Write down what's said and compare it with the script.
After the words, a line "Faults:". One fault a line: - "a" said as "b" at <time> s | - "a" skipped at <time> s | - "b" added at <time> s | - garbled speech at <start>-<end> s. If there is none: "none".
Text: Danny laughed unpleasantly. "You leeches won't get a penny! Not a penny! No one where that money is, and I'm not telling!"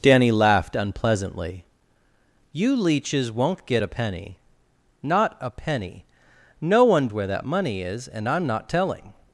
Danny laughed unpleasantly. "You leeches won't get a penny! Not a penny! No one where that money is, and I'm not telling!"
Faults:
none